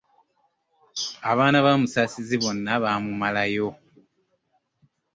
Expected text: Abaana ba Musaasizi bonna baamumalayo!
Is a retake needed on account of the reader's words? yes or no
no